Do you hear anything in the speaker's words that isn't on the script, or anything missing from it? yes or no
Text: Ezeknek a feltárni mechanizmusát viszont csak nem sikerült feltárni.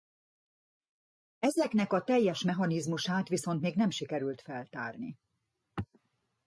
yes